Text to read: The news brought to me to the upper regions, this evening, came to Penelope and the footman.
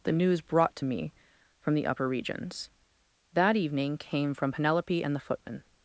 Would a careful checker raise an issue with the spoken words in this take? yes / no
yes